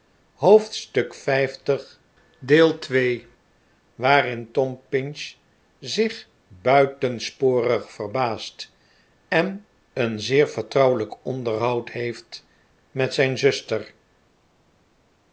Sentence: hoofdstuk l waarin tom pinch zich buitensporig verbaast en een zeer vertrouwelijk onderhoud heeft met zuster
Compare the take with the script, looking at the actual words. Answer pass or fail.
fail